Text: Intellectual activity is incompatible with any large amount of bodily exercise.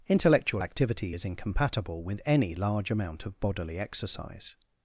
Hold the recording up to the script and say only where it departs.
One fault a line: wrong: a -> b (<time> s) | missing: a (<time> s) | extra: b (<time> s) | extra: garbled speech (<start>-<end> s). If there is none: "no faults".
no faults